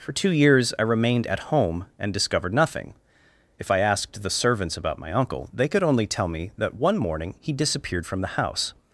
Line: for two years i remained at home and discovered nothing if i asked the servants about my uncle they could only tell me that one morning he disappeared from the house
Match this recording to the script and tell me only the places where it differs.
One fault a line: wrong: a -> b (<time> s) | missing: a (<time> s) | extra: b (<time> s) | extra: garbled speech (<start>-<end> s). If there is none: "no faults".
no faults